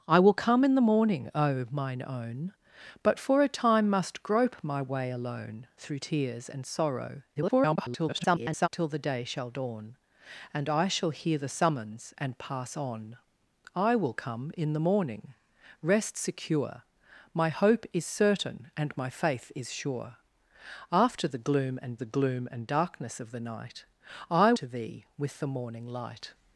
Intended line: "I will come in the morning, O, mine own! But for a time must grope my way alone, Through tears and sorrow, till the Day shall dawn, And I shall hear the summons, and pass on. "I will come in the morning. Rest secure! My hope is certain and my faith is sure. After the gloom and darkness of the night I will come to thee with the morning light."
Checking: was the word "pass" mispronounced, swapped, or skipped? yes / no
no